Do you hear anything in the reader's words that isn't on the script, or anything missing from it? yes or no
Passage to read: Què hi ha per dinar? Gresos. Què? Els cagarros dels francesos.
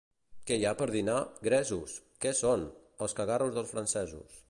yes